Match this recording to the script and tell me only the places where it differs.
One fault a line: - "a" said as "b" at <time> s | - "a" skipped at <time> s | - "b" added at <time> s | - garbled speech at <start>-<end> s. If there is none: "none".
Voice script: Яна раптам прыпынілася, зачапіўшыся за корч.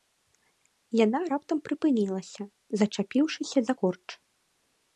none